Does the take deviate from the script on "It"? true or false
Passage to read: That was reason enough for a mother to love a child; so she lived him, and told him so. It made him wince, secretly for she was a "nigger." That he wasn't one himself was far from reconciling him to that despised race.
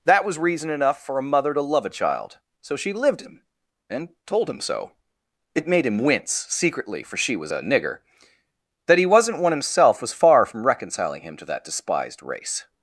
false